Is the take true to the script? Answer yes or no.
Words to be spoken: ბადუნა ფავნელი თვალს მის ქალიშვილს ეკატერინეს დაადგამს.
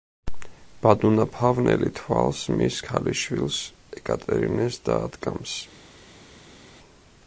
yes